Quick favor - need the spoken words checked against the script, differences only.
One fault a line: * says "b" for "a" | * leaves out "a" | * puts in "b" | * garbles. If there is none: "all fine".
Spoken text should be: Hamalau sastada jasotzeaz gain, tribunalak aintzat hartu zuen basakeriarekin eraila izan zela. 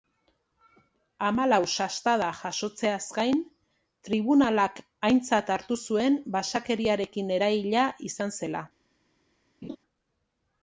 all fine